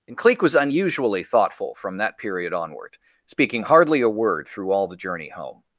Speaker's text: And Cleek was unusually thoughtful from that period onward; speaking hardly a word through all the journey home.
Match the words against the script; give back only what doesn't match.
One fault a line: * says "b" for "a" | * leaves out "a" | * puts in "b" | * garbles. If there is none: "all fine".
all fine